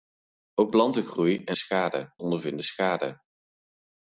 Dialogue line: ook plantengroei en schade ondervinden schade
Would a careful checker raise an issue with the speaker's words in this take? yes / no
no